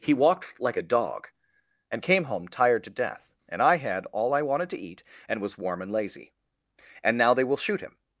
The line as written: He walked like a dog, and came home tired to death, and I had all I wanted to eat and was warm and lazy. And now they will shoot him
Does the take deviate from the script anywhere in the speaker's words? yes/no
no